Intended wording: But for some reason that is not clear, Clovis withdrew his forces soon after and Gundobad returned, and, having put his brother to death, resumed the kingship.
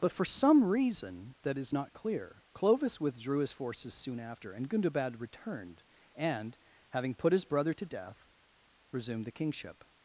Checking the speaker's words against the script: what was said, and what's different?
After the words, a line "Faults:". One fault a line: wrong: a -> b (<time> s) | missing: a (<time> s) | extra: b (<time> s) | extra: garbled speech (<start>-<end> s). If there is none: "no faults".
But for some reason that is not clear, Clovis withdrew his forces soon after and Gundobad returned, and, having put his brother to death, resumed the kingship.
Faults:
no faults